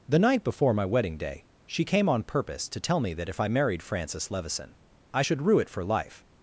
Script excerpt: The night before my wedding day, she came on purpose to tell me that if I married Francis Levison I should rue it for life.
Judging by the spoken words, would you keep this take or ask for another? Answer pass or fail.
pass